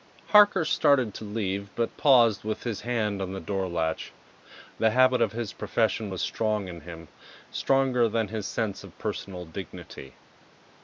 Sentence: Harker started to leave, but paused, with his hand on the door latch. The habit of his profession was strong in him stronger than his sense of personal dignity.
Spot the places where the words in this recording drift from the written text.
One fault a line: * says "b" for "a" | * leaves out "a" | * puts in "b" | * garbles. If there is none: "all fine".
all fine